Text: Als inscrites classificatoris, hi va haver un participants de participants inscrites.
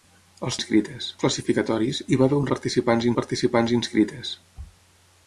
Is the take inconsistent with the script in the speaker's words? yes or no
no